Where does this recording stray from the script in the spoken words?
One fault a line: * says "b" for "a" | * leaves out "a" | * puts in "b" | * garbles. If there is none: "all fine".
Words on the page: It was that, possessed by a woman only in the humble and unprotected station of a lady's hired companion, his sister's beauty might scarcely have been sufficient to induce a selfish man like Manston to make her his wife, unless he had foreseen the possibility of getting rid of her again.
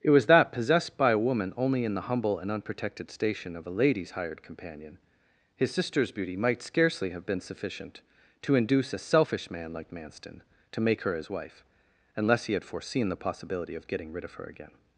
all fine